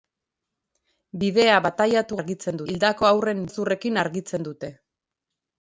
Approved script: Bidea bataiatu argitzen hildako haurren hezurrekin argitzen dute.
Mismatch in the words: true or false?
false